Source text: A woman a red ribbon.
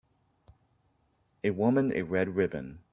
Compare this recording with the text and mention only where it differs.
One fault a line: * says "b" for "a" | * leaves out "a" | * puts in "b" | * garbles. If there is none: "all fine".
all fine